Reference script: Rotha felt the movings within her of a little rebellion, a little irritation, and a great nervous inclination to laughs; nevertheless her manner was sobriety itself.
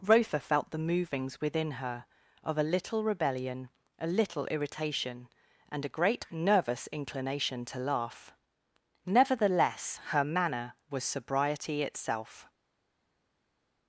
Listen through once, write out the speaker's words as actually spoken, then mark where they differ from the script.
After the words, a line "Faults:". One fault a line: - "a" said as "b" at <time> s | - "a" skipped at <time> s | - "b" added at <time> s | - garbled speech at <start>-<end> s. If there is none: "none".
Rotha felt the movings within her of a little rebellion, a little irritation, and a great nervous inclination to laugh; nevertheless her manner was sobriety itself.
Faults:
- "laughs" said as "laugh" at 7.8 s